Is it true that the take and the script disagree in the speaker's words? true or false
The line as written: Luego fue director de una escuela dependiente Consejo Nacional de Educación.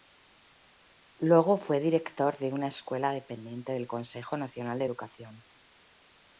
true